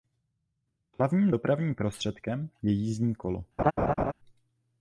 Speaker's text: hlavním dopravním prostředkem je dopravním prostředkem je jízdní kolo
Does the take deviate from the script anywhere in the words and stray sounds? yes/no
yes